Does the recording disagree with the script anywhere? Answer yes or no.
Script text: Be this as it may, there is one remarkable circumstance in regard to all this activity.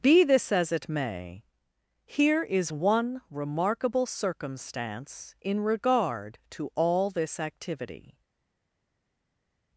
yes